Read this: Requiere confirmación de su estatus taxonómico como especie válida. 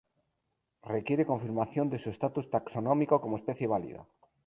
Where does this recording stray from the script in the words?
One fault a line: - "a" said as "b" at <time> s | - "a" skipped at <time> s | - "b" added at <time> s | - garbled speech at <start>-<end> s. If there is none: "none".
none